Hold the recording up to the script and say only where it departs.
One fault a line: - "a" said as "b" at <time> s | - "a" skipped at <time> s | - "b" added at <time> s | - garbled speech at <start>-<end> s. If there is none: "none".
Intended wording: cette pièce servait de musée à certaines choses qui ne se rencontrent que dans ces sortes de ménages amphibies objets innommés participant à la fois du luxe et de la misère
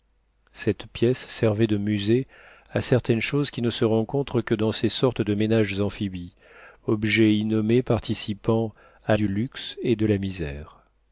- "la fois" skipped at 9.2 s